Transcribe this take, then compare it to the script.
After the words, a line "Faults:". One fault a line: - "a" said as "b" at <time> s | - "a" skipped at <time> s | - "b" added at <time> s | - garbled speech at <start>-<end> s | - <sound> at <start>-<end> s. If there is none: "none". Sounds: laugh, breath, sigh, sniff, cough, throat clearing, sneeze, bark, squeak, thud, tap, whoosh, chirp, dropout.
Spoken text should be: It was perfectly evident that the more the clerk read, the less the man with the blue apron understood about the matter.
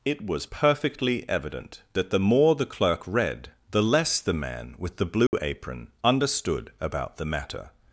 It was perfectly evident that the more the clerk read, the less the man with the blue apron understood about the matter.
Faults:
- dropout at 5.3-5.3 s